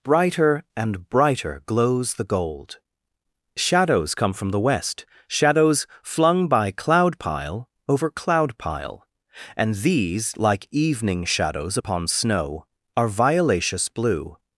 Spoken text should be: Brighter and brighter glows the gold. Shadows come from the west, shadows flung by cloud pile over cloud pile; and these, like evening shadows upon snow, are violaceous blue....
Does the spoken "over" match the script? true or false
true